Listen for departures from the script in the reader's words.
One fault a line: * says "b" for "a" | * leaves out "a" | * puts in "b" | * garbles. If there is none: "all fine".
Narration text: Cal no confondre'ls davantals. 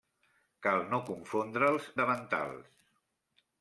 all fine